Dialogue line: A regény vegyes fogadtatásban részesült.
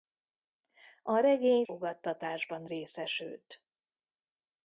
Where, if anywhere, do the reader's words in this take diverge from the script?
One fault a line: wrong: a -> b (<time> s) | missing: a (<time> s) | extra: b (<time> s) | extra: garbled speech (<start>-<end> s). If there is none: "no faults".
missing: vegyes (1.6 s)